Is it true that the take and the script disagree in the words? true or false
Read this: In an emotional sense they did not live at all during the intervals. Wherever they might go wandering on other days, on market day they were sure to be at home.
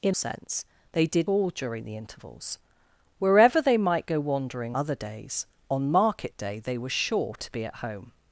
true